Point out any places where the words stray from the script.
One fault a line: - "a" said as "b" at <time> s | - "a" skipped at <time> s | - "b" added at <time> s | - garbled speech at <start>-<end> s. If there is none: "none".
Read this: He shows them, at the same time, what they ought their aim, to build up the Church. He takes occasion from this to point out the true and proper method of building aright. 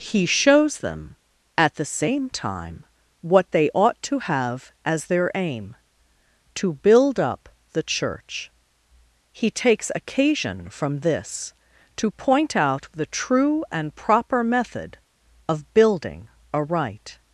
- "to have as" added at 4.0 s